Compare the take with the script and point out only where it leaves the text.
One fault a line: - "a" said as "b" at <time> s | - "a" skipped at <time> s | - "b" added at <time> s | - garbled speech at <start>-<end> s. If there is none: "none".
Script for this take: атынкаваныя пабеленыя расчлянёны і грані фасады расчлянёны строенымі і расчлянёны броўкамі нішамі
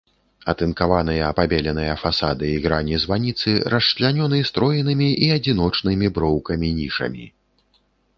- "расчлянёны" said as "фасады" at 2.0 s
- "фасады" said as "званіцы" at 3.0 s
- "расчлянёны" said as "адзіночнымі" at 5.4 s